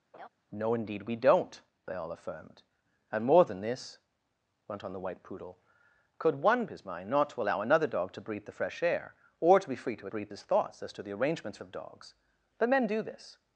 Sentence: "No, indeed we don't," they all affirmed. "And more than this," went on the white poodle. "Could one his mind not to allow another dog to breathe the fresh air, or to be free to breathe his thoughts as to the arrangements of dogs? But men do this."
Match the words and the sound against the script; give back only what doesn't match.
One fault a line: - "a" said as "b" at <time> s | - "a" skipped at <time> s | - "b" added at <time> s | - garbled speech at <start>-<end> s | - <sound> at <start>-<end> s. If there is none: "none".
- laugh at 0.1-0.3 s